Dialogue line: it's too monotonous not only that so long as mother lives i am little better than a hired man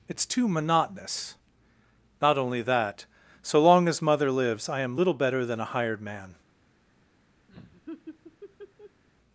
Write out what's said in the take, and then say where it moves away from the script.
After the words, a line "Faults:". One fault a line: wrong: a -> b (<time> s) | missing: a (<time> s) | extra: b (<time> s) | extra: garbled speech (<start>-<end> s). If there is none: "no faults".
it's too monotonous not only that so long as mother lives i am little better than a hired man
Faults:
no faults